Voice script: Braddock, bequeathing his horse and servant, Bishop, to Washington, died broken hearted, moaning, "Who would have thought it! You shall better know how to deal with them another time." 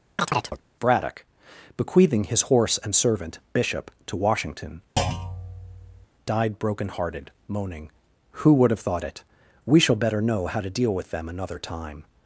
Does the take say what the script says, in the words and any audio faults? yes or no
no